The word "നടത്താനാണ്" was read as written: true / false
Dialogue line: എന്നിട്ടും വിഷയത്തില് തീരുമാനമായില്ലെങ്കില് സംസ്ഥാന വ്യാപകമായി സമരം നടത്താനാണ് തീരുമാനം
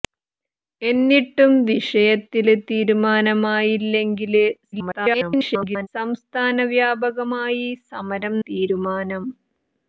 false